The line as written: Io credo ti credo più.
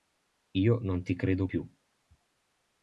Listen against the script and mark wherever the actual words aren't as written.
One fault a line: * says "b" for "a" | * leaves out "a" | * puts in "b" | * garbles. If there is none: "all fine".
* says "non" for "credo"